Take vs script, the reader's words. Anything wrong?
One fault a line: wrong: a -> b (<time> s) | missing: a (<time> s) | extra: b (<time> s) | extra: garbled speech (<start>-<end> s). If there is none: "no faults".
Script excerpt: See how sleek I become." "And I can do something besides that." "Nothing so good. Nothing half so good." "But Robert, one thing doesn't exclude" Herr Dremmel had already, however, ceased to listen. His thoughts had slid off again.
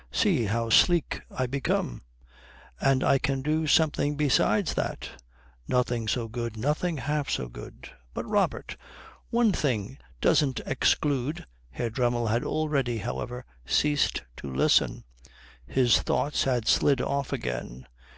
no faults